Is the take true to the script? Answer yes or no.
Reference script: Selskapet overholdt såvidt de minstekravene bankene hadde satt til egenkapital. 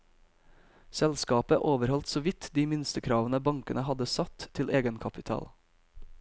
yes